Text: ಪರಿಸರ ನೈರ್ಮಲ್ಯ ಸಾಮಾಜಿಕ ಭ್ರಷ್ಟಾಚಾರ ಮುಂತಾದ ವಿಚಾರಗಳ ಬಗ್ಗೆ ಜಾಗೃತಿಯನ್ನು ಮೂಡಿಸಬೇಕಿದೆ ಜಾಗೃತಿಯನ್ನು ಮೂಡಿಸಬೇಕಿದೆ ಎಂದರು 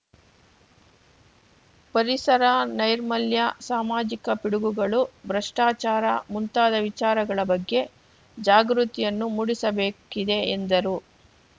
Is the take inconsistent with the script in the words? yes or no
yes